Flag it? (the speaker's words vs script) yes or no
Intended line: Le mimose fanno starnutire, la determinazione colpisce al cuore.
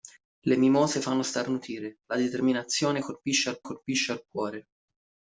yes